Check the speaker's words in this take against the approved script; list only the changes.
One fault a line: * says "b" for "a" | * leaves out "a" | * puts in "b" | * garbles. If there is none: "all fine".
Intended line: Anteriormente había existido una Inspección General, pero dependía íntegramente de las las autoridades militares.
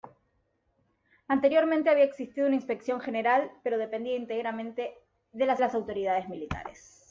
all fine